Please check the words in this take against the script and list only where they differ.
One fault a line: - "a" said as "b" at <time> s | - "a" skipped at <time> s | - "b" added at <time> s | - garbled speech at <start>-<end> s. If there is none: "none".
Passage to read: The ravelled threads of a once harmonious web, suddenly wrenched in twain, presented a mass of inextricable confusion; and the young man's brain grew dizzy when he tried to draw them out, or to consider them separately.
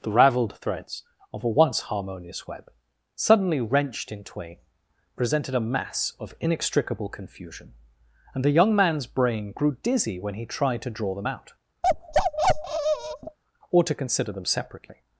none